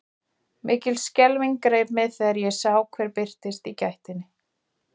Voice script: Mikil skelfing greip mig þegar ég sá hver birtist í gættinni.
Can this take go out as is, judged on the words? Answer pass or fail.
pass